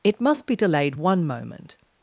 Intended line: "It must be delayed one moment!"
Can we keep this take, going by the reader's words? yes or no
yes